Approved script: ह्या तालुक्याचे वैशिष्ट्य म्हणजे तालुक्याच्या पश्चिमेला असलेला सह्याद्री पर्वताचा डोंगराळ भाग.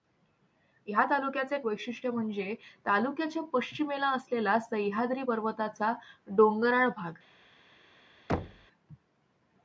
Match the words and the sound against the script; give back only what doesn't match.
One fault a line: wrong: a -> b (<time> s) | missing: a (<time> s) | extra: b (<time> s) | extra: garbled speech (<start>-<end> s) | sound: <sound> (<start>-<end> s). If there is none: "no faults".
sound: thud (8.3-8.7 s)